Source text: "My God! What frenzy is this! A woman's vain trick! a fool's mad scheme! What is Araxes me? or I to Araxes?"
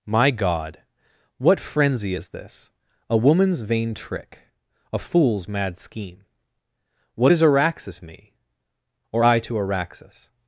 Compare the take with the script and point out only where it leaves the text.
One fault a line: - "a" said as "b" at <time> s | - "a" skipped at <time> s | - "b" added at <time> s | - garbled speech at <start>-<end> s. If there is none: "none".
none